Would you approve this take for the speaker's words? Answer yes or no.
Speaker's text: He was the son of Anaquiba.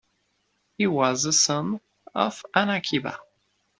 yes